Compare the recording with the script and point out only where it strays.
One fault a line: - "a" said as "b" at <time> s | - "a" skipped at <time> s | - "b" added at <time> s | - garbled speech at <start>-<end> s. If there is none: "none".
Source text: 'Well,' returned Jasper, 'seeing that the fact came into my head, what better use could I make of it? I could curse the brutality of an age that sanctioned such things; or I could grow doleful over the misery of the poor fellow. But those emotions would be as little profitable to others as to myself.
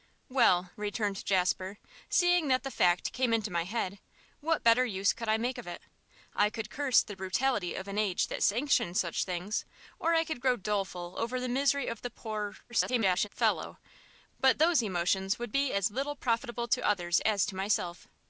- garbled speech at 12.7-13.3 s